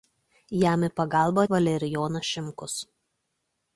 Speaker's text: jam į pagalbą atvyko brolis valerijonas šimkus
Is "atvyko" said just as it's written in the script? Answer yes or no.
no